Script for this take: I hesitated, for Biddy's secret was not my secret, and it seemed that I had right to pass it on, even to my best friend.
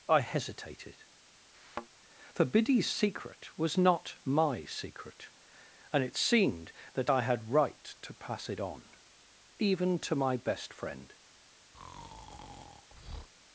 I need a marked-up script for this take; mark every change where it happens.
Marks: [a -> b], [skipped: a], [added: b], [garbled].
I hesitated, for Biddy's secret was not my secret, and it seemed that I had right to pass it on, even to my best friend.